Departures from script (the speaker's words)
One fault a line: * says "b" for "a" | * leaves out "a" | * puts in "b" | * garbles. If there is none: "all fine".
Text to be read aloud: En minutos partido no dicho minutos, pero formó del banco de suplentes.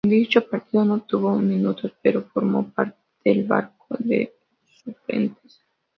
* says "dicho" for "minutos"
* says "tuvo" for "dicho"
* puts in "parte"